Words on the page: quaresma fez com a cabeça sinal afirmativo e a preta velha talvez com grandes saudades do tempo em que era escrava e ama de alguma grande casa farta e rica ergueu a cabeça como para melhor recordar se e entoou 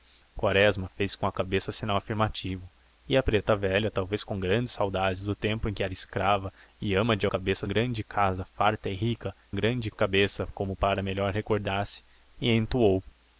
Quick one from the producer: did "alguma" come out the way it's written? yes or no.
no